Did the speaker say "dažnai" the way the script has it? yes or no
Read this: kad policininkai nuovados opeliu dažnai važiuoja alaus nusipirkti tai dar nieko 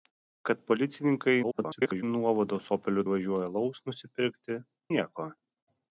no